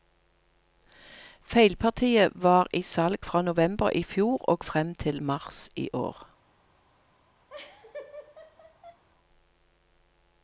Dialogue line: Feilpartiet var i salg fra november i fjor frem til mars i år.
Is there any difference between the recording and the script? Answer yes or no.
yes